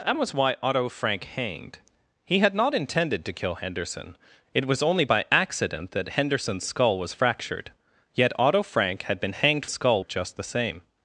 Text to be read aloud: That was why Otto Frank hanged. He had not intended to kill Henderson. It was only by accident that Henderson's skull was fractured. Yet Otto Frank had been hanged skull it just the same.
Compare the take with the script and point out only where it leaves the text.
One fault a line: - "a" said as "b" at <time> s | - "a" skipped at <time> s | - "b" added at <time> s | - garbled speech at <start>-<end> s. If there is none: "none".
none